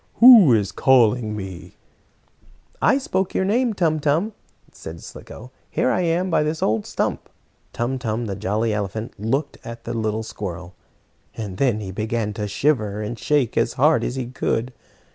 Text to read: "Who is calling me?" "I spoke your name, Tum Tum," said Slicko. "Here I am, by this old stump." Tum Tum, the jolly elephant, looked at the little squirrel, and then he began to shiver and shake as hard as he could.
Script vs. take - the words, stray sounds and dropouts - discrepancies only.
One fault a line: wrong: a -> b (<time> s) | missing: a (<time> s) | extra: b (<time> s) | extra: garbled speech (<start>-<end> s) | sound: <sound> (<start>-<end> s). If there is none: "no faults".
no faults